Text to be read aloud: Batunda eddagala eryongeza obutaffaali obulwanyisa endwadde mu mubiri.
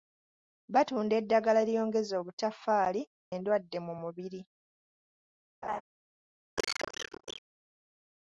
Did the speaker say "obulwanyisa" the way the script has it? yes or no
no